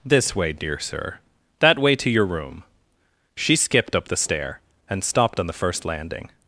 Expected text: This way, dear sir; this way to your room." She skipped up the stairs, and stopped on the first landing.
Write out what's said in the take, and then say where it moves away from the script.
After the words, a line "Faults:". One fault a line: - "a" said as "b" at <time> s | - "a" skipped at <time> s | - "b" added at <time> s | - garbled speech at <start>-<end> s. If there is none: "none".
This way, dear sir; that way to your room." She skipped up the stair, and stopped on the first landing.
Faults:
- "this" said as "that" at 1.6 s
- "stairs" said as "stair" at 4.2 s